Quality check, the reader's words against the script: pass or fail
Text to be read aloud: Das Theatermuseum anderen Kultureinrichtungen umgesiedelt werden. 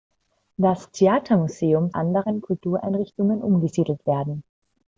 pass